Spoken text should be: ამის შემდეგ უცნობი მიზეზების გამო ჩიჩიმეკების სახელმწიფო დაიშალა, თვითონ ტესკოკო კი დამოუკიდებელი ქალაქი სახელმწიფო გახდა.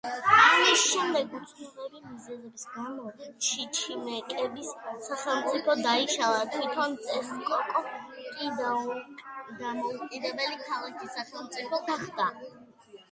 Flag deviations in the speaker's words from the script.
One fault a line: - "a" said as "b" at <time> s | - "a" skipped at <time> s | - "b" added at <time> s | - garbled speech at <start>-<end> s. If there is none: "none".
none